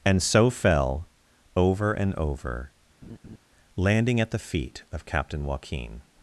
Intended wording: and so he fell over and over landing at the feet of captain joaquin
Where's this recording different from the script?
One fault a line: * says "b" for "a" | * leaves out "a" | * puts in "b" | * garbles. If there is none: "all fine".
* leaves out "he"